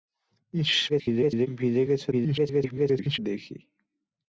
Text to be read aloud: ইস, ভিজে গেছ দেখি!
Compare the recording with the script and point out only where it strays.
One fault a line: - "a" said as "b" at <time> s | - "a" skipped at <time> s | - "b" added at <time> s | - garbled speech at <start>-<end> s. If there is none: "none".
- garbled speech at 0.9-1.5 s
- garbled speech at 2.1-3.2 s